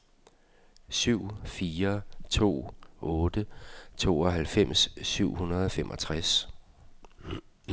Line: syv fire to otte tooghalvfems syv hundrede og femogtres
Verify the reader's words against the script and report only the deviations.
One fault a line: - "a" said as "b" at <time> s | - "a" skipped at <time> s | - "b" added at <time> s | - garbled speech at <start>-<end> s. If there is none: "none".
none